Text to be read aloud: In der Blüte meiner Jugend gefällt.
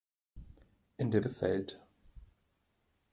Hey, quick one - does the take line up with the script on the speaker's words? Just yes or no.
no